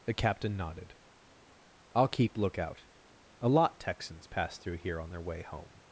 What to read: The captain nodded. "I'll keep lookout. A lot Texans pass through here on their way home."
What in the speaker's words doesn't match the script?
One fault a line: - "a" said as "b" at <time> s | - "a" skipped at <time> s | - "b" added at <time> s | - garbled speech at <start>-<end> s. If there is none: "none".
none